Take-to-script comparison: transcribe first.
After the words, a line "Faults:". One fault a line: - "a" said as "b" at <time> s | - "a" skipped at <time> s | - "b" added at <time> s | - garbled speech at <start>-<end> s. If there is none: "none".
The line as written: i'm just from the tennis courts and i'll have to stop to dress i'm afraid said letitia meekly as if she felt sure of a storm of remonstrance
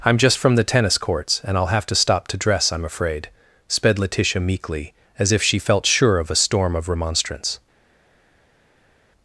i'm just from the tennis courts and i'll have to stop to dress i'm afraid sped letitia meekly as if she felt sure of a storm of remonstrance
Faults:
- "said" said as "sped" at 3.7 s